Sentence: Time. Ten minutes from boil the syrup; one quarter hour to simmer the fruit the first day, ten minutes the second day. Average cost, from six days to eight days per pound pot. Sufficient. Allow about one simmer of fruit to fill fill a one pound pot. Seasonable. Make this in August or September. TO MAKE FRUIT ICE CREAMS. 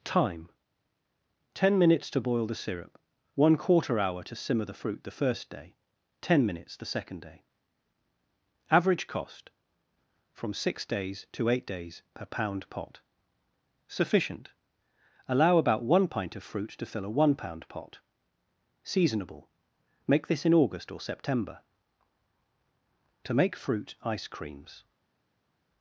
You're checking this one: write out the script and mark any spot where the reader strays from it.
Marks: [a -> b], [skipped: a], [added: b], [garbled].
Time. Ten minutes [from -> to] boil the syrup; one quarter hour to simmer the fruit the first day, ten minutes the second day. Average cost, from six days to eight days per pound pot. Sufficient. Allow about one [simmer -> pint] of fruit to fill [skipped: fill] a one pound pot. Seasonable. Make this in August or September. TO MAKE FRUIT ICE CREAMS.